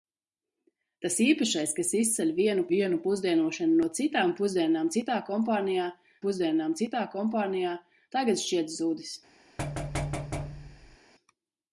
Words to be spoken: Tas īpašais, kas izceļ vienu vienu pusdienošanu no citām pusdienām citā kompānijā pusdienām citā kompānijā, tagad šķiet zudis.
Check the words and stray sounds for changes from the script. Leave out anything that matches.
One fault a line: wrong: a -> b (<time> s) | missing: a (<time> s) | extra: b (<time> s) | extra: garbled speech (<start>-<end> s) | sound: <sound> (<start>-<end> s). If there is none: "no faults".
sound: thud (9.6-11.0 s)